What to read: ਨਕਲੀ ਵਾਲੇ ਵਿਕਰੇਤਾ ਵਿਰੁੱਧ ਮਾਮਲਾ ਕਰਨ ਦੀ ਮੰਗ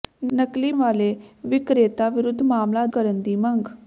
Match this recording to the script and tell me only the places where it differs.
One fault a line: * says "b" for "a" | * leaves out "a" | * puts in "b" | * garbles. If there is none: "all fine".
all fine